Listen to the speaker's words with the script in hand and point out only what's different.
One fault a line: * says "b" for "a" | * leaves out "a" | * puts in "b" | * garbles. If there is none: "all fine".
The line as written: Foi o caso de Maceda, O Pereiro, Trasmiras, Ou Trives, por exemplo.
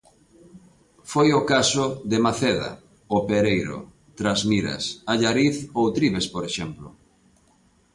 * puts in "Allariz"